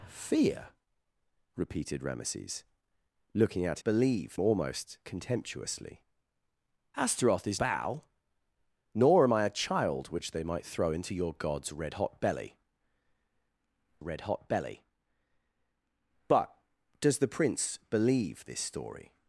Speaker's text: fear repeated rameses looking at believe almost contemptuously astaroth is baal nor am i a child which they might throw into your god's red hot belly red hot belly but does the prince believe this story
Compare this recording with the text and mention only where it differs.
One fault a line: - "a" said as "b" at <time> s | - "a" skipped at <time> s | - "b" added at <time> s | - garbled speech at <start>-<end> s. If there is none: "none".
none